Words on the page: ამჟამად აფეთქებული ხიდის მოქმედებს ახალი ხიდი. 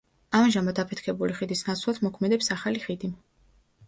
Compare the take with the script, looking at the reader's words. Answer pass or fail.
fail